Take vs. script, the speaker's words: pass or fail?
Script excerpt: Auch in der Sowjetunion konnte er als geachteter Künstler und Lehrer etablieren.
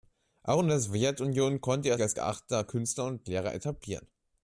pass